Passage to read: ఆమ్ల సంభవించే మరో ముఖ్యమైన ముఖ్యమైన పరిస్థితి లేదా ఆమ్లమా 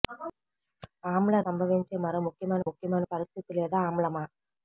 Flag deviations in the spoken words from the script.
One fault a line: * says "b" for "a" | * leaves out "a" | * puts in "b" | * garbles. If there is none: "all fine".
all fine